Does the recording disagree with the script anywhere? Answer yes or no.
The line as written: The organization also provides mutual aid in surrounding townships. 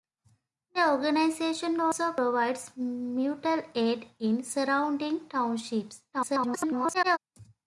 yes